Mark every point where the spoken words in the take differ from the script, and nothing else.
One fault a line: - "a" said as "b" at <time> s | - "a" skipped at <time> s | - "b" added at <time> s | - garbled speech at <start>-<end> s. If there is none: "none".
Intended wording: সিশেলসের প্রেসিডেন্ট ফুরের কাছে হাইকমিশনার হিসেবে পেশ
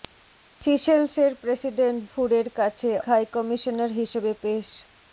none